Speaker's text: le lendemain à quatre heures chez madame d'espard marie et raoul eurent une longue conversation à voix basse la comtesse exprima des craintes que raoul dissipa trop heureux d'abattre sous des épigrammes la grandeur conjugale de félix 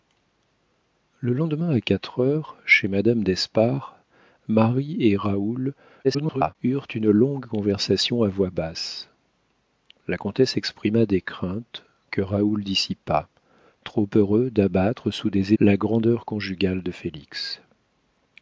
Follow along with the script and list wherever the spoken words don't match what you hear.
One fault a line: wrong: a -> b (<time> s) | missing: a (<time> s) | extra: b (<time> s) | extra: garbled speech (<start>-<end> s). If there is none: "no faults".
extra: garbled speech (6.0-6.6 s)
missing: épigrammes (15.5 s)